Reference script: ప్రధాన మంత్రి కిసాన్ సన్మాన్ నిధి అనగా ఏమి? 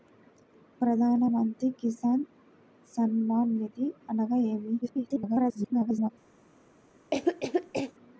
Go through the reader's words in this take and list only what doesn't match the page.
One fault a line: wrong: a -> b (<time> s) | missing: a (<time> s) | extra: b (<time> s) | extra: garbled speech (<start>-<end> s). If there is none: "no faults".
extra: garbled speech (4.8-6.1 s)